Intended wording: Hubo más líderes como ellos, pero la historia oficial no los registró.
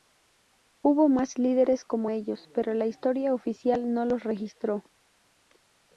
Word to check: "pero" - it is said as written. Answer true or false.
true